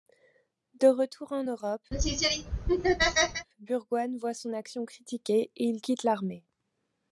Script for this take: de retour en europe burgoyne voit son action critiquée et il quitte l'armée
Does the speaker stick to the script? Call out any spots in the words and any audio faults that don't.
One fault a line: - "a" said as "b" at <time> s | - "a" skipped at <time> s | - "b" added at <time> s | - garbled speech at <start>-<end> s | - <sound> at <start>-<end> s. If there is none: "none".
- laugh at 1.9-3.5 s